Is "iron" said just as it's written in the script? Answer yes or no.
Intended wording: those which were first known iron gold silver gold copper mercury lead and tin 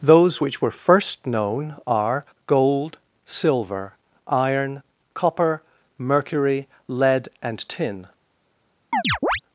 no